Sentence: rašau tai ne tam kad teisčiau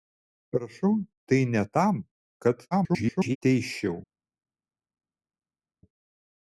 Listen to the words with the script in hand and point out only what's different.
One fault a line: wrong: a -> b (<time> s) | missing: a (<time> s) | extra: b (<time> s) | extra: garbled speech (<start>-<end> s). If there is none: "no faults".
extra: garbled speech (2.7-3.4 s)